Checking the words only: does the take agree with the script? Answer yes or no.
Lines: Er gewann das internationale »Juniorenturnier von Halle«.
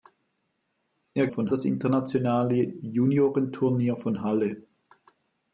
no